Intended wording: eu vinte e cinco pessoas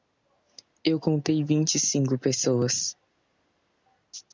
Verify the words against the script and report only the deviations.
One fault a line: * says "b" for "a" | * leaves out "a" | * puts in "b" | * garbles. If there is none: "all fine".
* puts in "contei"